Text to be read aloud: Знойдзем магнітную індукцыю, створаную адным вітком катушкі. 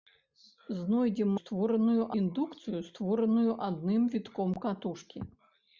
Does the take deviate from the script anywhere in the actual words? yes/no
yes